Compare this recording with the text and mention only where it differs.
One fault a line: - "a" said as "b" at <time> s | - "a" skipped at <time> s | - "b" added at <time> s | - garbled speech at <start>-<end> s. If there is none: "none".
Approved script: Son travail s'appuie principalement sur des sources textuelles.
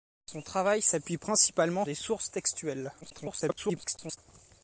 - "sur" skipped at 1.9 s
- garbled speech at 3.0-4.2 s